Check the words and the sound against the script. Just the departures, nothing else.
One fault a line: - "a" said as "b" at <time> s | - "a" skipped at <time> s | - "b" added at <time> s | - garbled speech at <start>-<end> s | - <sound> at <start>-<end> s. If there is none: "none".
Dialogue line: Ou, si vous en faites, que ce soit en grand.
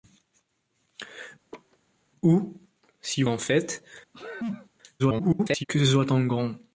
- laugh at 1.5-1.8 s
- "vous" skipped at 3.2 s
- sneeze at 4.1-4.7 s
- garbled speech at 5.0-5.6 s